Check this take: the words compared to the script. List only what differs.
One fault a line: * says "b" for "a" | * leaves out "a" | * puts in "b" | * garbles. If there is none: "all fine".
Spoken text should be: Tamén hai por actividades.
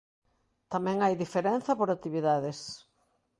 * puts in "diferenza"